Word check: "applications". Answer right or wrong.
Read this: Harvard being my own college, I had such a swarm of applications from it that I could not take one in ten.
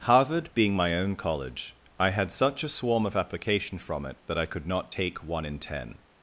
wrong